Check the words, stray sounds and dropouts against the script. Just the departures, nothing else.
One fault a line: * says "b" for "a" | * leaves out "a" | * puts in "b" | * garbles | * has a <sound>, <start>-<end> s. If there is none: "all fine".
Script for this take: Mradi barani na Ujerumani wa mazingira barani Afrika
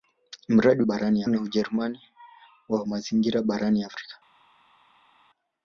all fine